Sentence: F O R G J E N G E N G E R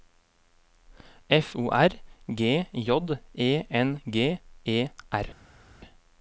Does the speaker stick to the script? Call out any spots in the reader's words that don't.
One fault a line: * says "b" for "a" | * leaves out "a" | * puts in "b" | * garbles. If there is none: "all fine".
* leaves out "N G E"